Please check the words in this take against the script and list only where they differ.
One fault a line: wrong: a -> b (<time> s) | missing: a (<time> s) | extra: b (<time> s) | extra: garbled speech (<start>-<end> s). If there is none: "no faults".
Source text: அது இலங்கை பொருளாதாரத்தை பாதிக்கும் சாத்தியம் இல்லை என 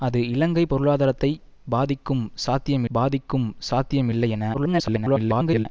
extra: பாதிக்கும் சாத்தியம் (2.9 s)
extra: garbled speech (4.5-5.7 s)